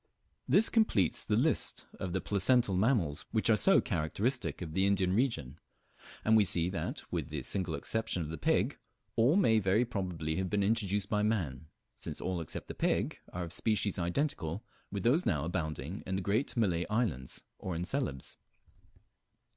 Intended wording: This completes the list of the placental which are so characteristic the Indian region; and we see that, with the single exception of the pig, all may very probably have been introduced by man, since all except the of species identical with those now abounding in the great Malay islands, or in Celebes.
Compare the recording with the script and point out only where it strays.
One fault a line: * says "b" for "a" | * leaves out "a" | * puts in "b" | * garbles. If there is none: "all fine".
* puts in "mammals"
* puts in "of"
* puts in "pig are"